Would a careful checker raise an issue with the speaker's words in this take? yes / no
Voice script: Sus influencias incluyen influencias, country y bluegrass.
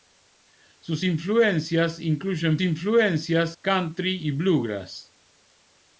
no